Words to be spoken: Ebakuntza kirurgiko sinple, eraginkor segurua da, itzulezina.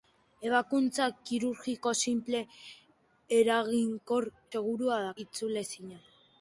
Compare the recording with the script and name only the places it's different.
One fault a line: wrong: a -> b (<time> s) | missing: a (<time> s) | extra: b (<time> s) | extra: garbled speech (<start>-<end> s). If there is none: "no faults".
no faults